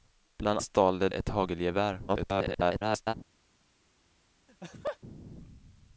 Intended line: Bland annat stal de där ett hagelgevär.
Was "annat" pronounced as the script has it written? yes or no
no